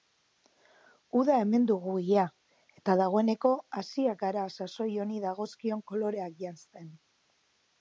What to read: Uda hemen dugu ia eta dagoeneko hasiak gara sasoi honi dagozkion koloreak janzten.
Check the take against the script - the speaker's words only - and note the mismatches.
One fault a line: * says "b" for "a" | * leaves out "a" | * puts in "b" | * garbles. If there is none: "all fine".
all fine